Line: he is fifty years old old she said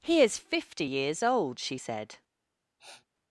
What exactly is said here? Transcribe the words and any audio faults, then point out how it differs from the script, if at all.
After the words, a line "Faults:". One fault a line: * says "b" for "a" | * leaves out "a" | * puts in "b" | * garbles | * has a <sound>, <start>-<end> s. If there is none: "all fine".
he is fifty years old she said
Faults:
* leaves out "old"
* has a sniff, 2.8-3.1 s